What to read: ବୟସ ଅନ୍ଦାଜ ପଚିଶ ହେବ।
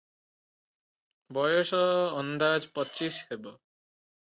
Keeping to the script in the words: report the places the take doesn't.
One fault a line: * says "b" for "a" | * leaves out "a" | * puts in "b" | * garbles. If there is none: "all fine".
all fine